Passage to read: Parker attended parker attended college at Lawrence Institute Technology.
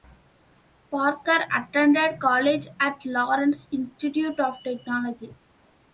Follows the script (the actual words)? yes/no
no